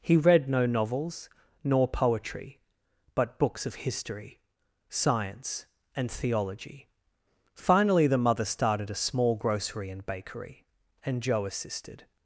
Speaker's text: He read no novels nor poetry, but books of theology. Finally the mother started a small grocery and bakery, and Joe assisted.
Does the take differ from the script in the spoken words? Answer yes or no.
yes